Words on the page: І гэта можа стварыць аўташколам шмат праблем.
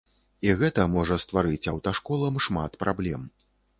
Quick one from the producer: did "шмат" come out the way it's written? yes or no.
yes